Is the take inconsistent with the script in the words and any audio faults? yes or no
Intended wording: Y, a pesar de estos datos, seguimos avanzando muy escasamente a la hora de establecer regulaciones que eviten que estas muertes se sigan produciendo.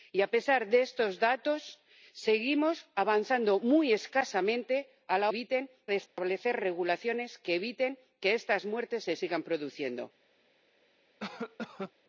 yes